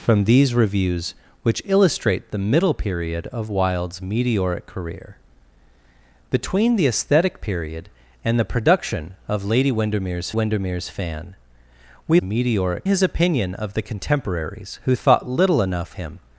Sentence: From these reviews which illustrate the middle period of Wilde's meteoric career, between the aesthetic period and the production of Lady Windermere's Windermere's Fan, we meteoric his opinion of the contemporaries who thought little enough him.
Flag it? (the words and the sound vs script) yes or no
no